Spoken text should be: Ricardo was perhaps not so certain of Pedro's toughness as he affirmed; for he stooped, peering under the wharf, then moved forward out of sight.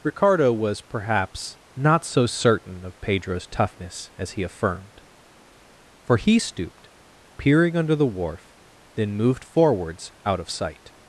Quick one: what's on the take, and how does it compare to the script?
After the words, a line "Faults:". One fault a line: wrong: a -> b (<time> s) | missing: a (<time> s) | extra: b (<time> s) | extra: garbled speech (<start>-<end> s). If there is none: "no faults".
Ricardo was perhaps not so certain of Pedro's toughness as he affirmed; for he stooped, peering under the wharf, then moved forwards out of sight.
Faults:
wrong: forward -> forwards (9.4 s)